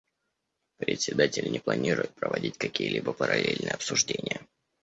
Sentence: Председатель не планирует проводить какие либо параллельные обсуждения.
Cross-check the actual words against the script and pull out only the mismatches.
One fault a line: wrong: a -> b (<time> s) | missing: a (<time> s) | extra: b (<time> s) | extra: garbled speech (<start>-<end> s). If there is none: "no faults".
no faults